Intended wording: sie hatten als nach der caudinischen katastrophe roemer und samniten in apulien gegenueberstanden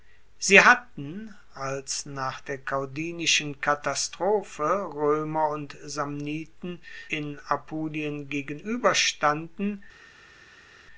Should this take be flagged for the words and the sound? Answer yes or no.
no